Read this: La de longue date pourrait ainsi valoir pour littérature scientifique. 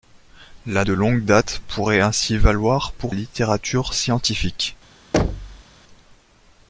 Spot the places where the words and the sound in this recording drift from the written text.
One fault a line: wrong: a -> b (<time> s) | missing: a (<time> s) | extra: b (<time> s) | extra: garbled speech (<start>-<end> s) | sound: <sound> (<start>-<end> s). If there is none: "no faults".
sound: thud (5.1-5.6 s)